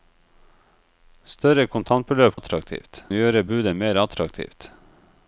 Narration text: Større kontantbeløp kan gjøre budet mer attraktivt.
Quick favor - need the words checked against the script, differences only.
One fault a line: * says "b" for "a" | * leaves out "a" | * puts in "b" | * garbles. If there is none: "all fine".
* says "attraktivt" for "kan"